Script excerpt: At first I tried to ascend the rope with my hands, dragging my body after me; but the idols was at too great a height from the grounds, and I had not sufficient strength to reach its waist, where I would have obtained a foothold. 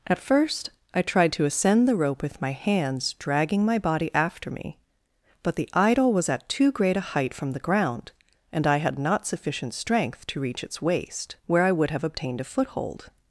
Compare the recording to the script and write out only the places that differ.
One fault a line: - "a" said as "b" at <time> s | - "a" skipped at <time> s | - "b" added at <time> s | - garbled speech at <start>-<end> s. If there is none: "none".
- "idols" said as "idol" at 5.7 s
- "grounds" said as "ground" at 7.6 s